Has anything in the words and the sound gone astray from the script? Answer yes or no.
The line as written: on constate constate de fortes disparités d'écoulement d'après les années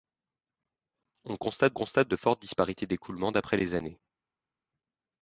no